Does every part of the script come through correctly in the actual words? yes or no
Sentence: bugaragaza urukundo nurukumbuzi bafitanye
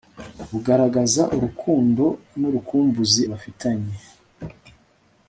yes